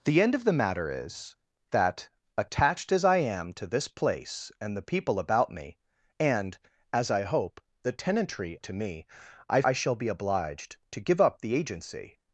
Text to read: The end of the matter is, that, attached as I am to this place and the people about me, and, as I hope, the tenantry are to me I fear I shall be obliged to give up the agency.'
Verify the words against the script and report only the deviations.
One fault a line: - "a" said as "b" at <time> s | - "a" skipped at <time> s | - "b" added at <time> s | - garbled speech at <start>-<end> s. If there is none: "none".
- "are" skipped at 8.6 s
- "fear" skipped at 9.6 s